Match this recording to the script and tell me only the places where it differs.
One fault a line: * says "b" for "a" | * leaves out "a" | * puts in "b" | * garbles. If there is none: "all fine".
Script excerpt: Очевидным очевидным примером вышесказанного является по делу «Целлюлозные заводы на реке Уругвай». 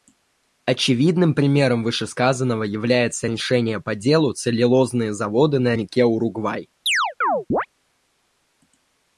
* leaves out "очевидным"
* puts in "решение"